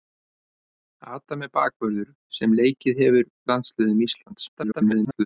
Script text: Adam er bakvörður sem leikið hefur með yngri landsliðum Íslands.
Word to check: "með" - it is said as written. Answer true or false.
false